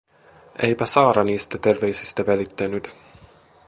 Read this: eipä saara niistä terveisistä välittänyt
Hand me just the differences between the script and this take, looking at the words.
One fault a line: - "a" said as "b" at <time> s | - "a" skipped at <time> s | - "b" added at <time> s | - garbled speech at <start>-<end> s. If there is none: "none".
none